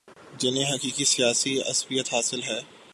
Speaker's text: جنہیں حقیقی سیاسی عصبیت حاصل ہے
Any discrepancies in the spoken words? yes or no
no